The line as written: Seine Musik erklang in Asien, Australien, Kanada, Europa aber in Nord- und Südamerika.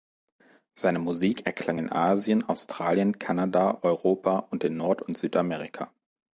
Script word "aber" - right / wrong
wrong